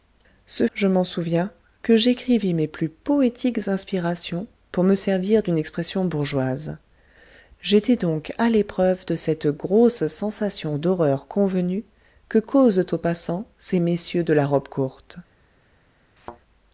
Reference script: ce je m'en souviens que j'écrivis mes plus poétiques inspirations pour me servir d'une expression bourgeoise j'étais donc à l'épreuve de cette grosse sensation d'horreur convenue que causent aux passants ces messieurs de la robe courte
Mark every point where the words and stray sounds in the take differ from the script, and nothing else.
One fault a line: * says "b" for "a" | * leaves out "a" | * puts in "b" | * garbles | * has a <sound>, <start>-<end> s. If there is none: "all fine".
* has a thud, 16.2-16.4 s